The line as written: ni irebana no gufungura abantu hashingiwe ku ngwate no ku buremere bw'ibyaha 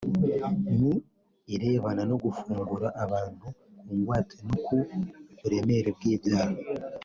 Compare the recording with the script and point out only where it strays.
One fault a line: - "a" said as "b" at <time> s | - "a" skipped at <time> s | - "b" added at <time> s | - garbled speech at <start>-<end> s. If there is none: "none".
- "hashingiwe" skipped at 3.5 s